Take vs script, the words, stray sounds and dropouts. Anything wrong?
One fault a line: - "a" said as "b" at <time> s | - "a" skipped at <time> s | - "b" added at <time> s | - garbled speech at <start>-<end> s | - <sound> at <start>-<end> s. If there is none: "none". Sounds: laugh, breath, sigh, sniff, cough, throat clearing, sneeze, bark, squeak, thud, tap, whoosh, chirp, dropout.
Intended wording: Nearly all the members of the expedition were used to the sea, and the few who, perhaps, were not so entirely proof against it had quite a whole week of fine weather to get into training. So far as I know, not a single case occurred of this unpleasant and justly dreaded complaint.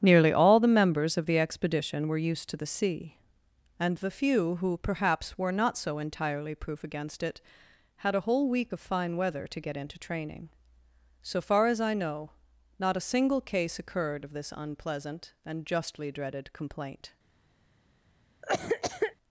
- "quite" skipped at 8.2 s
- cough at 18.4-19.2 s